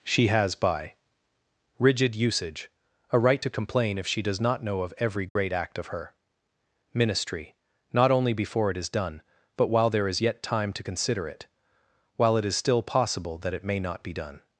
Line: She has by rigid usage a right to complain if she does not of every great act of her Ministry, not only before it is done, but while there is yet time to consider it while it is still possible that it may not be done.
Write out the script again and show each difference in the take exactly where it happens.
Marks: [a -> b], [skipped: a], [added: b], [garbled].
She has by rigid usage a right to complain if she does not [added: know] of every great act of her Ministry, not only before it is done, but while there is yet time to consider it while it is still possible that it may not be done.